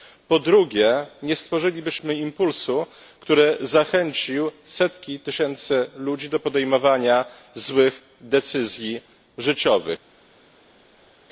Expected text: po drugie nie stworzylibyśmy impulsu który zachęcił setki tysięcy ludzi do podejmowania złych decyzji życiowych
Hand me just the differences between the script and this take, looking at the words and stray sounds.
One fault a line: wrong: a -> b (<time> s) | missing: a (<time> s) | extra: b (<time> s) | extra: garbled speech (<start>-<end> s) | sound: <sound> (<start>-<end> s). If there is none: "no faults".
no faults